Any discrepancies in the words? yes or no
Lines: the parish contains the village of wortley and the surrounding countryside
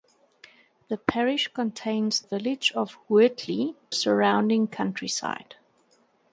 yes